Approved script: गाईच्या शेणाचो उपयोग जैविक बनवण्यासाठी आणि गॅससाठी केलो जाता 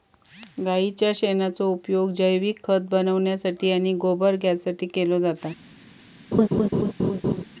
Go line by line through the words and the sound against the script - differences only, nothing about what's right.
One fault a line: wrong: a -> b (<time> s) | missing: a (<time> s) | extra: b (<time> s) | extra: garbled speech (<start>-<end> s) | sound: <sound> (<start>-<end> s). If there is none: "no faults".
extra: खत (2.6 s)
extra: गोबर (4.0 s)
sound: laugh (6.3-7.4 s)